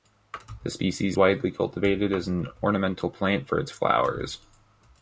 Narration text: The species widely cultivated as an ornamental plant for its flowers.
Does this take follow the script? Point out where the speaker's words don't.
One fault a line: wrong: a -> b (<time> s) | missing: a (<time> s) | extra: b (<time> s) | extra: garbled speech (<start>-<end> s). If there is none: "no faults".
no faults